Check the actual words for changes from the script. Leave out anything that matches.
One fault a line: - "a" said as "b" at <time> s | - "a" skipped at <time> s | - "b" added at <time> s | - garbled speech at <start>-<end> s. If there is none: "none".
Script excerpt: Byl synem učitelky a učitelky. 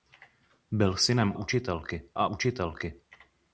none